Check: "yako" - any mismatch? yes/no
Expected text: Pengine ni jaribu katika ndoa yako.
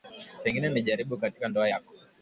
no